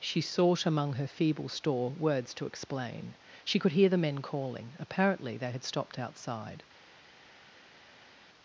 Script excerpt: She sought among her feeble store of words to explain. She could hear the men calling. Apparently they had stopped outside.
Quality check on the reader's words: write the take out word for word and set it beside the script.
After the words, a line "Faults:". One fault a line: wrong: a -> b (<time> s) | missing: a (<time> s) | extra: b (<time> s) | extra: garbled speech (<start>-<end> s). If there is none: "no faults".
She sought among her feeble store words to explain. She could hear the men calling. Apparently they had stopped outside.
Faults:
missing: of (1.9 s)